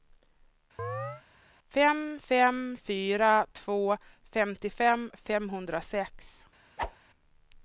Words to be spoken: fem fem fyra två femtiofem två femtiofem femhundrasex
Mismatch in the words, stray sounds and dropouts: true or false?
true